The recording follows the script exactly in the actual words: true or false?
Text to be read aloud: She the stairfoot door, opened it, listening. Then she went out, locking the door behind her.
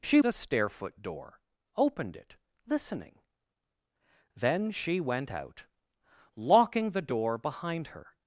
true